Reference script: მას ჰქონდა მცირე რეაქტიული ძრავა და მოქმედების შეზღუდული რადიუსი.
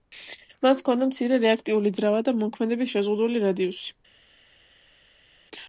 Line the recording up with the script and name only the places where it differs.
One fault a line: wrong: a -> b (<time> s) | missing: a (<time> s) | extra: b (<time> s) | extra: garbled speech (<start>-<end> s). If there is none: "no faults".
no faults